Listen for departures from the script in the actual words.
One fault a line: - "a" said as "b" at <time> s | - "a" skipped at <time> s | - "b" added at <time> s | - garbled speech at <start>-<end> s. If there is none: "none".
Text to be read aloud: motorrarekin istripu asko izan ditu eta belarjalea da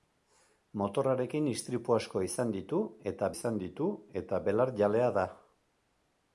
- "izan ditu eta" added at 3.3 s